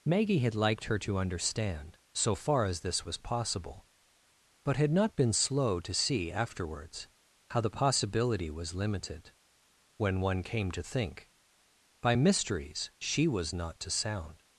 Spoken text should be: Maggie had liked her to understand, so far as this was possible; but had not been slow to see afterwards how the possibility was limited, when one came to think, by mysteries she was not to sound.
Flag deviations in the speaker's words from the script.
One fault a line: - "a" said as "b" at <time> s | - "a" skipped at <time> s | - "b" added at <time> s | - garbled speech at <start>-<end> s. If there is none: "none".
none